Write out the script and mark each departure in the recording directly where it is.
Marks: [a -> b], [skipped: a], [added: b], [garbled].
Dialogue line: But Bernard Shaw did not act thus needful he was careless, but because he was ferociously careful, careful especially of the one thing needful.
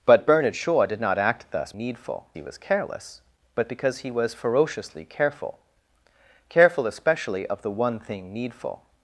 But Bernard Shaw did not act thus needful he was careless, but because he was ferociously careful, careful especially of the one thing needful.